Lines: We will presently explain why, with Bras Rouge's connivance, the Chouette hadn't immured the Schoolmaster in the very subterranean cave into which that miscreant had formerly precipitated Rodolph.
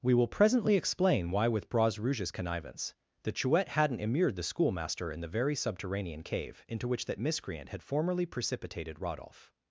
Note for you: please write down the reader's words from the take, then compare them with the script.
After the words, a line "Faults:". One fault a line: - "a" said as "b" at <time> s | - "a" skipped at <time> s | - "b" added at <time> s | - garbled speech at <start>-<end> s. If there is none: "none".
We will presently explain why, with Bras Rouge's connivance, the Chouette hadn't immured the Schoolmaster in the very subterranean cave into which that miscreant had formerly precipitated Rodolph.
Faults:
none